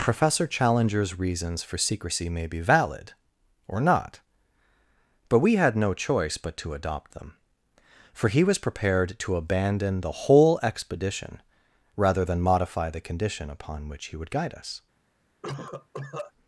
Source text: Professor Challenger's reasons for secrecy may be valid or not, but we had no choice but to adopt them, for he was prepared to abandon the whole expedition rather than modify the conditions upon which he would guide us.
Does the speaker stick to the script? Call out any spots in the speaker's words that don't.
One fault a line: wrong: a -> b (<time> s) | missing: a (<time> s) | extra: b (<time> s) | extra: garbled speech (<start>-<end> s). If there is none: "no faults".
wrong: conditions -> condition (13.0 s)